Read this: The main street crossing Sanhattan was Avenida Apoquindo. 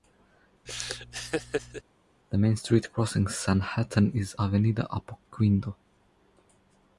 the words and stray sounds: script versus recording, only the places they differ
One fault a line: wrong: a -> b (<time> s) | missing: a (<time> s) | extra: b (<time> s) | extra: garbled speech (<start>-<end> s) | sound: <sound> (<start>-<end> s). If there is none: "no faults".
sound: laugh (0.7-1.8 s)
wrong: was -> is (4.1 s)